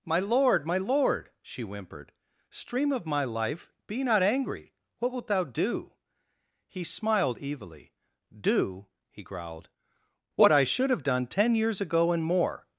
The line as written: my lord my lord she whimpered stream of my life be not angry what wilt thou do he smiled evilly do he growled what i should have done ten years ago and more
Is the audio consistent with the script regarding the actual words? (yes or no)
yes